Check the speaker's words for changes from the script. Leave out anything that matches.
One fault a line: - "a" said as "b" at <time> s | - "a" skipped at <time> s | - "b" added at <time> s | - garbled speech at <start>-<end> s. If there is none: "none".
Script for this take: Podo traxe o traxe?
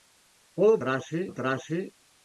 none